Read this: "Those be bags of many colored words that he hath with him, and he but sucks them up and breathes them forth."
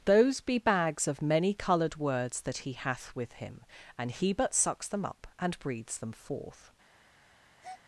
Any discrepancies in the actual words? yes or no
no